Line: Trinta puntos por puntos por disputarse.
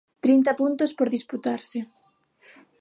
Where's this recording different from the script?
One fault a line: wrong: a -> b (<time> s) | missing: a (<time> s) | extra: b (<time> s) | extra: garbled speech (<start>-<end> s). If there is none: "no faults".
missing: puntos por (1.1 s)